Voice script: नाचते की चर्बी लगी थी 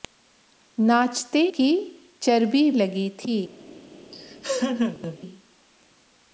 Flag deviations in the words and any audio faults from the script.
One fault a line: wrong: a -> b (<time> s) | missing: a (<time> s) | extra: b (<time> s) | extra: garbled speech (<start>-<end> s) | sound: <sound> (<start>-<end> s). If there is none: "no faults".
sound: laugh (4.1-5.2 s)